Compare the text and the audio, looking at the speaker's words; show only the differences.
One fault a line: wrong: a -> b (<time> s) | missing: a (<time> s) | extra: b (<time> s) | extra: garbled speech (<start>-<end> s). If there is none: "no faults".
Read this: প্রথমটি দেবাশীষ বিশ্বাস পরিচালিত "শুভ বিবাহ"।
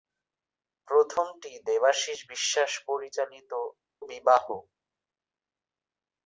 missing: শুভ (3.5 s)